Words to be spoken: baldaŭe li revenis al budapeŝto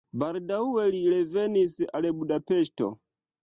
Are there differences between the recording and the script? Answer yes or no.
no